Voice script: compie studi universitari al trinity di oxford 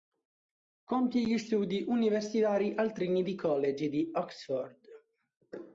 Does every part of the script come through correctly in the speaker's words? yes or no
no